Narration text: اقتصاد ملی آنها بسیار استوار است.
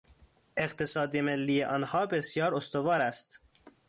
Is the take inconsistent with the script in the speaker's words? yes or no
no